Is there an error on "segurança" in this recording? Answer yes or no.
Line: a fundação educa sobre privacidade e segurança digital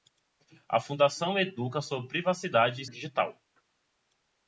yes